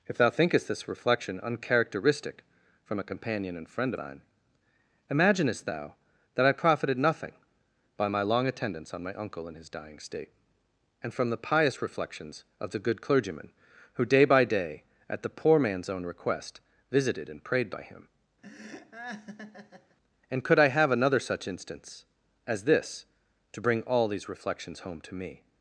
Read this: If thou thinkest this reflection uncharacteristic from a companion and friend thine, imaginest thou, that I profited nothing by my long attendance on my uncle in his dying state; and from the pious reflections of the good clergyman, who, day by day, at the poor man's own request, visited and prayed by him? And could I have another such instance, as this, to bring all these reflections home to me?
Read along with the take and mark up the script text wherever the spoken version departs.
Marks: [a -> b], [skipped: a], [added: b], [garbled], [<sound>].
If thou thinkest this reflection uncharacteristic from a companion and friend thine, imaginest thou, that I profited nothing by my long attendance on my uncle in his dying state; and from the pious reflections of the good clergyman, who, day by day, at the poor man's own request, visited and prayed by him? [laugh] And could I have another such instance, as this, to bring all these reflections home to me?